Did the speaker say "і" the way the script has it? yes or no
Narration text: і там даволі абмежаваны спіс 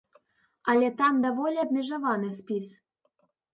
no